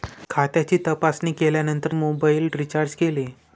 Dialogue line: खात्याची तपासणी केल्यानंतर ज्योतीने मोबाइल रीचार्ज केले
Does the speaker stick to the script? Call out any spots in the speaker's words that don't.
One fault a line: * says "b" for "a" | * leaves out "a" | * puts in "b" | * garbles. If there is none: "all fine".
* leaves out "ज्योतीने"